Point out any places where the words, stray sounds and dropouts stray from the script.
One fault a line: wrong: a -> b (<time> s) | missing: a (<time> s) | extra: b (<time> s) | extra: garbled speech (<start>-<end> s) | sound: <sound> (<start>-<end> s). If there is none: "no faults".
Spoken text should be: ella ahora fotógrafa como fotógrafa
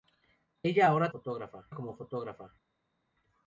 no faults